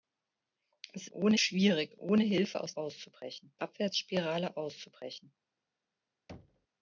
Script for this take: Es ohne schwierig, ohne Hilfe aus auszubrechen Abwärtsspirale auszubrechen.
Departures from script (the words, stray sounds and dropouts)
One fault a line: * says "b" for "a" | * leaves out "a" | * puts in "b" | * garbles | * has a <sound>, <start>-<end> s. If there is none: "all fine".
* has a thud, 6.3-6.7 s